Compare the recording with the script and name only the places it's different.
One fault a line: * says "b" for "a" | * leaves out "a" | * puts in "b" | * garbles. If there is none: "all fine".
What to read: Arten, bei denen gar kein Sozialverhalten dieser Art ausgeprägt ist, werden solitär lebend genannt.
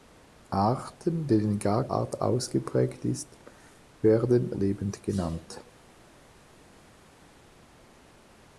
* leaves out "bei"
* leaves out "kein Sozialverhalten dieser"
* leaves out "solitär"